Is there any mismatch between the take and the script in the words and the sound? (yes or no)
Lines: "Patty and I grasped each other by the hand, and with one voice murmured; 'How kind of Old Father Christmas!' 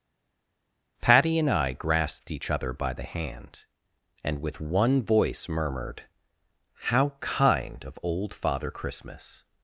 no